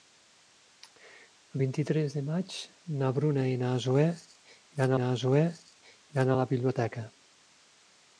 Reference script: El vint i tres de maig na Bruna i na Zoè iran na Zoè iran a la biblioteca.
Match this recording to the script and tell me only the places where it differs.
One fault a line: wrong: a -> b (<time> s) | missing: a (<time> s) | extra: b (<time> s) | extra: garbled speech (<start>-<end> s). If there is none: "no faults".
no faults